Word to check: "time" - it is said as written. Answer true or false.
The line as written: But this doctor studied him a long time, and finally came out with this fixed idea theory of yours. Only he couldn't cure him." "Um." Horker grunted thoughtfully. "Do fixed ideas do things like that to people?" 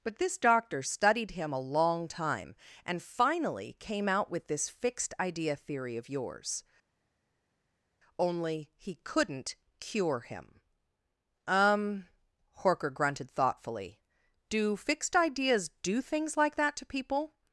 true